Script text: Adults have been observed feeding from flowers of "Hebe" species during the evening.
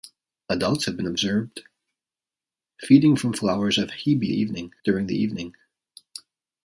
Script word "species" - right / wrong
wrong